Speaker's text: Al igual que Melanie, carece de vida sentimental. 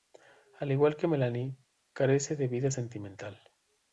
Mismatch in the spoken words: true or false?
false